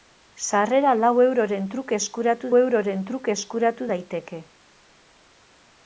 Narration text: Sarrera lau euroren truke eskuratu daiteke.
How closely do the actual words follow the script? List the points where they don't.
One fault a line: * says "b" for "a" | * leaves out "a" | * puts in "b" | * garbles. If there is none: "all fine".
* puts in "euroren truke eskuratu"